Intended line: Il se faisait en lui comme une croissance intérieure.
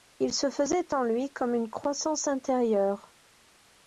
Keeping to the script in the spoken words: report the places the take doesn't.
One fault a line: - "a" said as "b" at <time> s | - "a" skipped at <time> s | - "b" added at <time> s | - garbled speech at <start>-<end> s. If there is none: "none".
none